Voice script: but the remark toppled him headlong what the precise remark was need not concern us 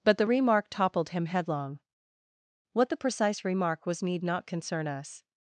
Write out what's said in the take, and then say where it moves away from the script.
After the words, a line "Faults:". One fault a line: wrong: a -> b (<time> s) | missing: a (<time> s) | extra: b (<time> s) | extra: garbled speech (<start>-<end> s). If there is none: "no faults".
but the remark toppled him headlong what the precise remark was need not concern us
Faults:
no faults